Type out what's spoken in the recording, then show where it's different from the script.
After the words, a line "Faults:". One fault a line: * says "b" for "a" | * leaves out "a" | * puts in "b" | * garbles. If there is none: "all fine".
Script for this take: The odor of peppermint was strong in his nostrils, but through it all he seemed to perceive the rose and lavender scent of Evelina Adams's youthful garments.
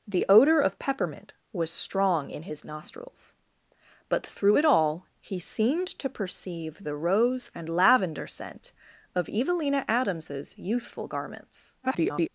The odor of peppermint was strong in his nostrils, but through it all he seemed to perceive the rose and lavender scent of Evelina Adams's youthful garments. [garbled]
Faults:
* garbles